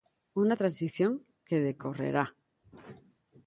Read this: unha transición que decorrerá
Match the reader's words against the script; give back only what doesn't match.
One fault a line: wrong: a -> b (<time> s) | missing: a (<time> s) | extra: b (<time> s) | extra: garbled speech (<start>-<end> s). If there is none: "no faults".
no faults